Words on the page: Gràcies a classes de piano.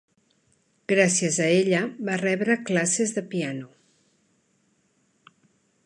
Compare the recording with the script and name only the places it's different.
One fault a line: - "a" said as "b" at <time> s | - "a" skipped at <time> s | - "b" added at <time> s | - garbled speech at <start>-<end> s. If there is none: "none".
- "ella va rebre" added at 1.6 s